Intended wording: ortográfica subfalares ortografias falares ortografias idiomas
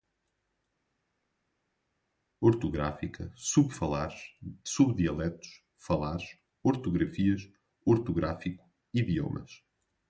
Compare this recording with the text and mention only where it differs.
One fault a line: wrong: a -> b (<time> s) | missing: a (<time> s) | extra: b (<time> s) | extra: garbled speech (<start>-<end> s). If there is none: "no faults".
wrong: ortografias -> subdialetos (4.6 s)
extra: ortográfico (7.9 s)